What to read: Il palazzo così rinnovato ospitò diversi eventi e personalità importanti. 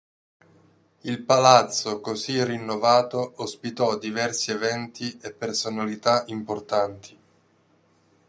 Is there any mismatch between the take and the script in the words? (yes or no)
no